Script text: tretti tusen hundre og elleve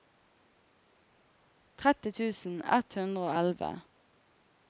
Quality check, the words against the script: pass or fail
fail